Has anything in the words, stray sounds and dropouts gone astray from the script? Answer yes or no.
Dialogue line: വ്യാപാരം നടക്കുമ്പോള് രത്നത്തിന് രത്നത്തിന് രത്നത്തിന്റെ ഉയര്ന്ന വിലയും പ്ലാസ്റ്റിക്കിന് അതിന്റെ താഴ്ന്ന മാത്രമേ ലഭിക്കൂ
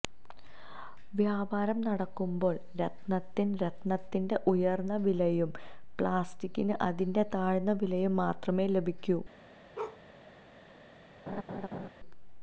yes